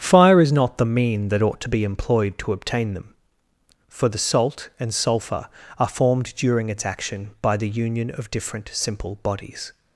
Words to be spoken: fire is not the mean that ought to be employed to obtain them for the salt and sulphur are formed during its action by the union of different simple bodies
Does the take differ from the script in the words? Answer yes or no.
no